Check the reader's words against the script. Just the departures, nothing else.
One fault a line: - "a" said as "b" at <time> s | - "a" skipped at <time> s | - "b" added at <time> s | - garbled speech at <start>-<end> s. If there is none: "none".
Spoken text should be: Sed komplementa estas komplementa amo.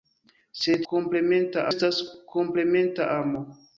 none